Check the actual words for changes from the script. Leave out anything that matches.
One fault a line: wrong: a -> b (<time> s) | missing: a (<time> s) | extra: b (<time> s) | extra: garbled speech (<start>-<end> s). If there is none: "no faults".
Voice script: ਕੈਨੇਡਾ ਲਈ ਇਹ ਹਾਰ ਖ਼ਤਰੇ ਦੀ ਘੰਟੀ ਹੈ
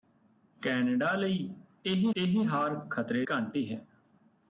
extra: ਇਹ (2.2 s)
missing: ਦੀ (3.2 s)